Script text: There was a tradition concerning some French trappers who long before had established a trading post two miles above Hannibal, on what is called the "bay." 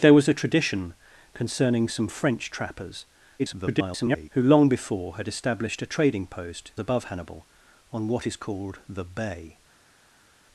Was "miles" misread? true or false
true